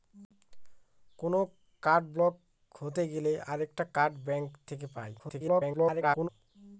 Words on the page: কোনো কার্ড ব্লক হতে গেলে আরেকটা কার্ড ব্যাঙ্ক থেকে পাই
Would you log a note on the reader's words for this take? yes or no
yes